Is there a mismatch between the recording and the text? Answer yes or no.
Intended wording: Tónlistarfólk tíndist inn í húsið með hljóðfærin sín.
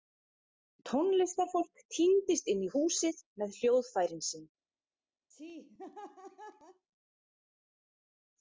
no